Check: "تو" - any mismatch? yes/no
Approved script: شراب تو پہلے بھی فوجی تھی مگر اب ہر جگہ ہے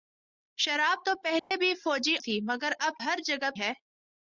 no